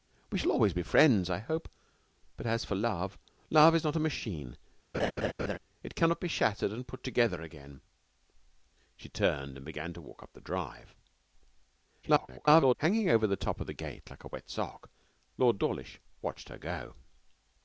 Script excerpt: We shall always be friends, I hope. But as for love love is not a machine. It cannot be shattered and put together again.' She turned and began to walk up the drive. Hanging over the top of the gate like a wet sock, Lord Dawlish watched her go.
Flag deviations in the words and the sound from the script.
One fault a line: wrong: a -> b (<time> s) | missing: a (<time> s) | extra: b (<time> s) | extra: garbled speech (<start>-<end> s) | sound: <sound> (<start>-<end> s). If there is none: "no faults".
sound: laugh (4.9-5.6 s)
extra: garbled speech (12.0-12.8 s)